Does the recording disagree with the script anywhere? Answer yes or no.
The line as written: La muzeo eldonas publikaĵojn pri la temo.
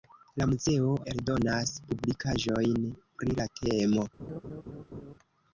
no